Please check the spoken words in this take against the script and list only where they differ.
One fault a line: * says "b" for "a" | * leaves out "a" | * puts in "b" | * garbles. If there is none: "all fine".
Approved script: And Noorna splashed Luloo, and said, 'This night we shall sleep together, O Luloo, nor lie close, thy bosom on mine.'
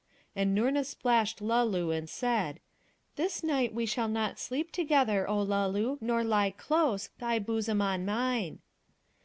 * puts in "not"